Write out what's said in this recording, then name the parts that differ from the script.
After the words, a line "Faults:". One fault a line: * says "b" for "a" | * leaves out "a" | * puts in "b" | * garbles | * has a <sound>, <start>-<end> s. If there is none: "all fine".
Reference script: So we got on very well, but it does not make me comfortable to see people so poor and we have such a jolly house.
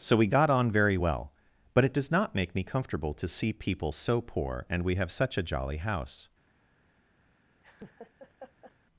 So we got on very well, but it does not make me comfortable to see people so poor and we have such a jolly house.
Faults:
* has a laugh, 7.6-8.7 s